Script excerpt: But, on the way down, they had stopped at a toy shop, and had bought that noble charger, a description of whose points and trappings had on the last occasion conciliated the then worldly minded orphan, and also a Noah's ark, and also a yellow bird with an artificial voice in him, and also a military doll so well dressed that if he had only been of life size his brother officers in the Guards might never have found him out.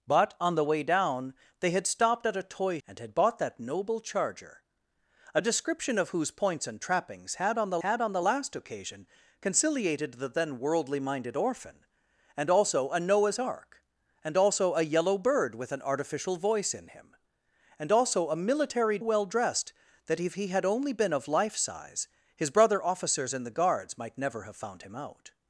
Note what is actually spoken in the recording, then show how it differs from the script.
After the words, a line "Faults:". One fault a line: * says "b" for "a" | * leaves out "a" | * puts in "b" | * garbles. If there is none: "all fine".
But, on the way down, they had stopped at a toy and had bought that noble charger, a description of whose points and trappings had on the had on the last occasion conciliated the then worldly minded orphan, and also a Noah's ark, and also a yellow bird with an artificial voice in him, and also a military well dressed that if he had only been of life size his brother officers in the Guards might never have found him out.
Faults:
* leaves out "shop"
* puts in "had on the"
* leaves out "doll so"